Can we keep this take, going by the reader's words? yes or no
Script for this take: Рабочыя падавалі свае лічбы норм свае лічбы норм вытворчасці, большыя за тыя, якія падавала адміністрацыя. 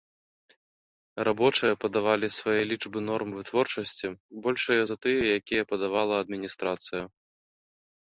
no